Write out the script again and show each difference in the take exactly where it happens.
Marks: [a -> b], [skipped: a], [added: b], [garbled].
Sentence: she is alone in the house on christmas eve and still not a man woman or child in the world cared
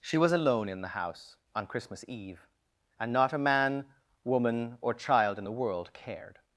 she [is -> was] alone in the house on christmas eve and [skipped: still] not a man woman or child in the world cared